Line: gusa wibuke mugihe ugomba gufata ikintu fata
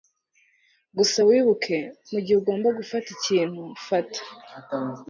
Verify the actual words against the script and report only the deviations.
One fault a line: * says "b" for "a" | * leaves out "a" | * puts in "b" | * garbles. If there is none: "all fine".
all fine